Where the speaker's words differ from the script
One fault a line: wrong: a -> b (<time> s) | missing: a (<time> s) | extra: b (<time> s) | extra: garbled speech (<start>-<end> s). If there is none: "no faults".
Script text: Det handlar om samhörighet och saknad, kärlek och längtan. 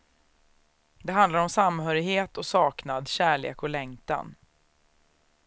no faults